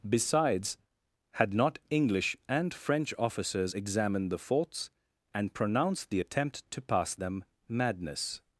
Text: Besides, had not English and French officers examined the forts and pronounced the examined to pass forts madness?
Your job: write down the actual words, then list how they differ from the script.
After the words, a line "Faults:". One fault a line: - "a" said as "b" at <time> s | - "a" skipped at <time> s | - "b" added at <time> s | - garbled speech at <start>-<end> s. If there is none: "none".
Besides, had not English and French officers examined the forts and pronounced the attempt to pass them madness?
Faults:
- "examined" said as "attempt" at 6.2 s
- "forts" said as "them" at 7.1 s